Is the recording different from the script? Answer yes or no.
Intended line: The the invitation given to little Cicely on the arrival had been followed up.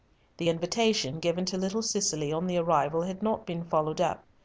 yes